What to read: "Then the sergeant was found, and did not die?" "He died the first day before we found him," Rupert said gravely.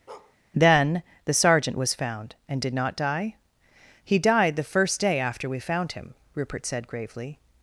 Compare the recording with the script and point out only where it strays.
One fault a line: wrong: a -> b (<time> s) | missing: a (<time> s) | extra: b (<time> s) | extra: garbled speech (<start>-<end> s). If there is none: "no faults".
wrong: before -> after (5.2 s)